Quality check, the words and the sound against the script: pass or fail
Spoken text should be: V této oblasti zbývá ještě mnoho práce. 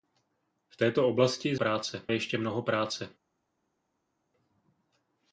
fail